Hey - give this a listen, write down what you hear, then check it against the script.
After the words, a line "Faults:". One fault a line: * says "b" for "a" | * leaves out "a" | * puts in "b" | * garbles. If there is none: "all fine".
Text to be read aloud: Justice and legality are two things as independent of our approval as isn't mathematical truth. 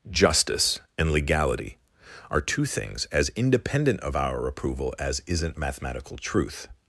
Justice and legality are two things as independent of our approval as isn't mathematical truth.
Faults:
all fine